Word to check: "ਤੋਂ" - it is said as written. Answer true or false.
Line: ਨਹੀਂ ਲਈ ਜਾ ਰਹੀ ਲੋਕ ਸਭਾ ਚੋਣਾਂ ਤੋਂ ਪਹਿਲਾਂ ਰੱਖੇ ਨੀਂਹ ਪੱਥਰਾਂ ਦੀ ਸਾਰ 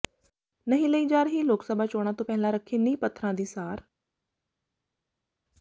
true